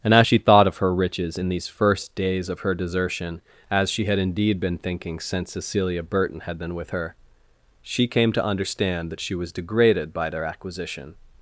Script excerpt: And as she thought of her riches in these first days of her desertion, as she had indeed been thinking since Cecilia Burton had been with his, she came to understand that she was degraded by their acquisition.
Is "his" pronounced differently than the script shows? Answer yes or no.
yes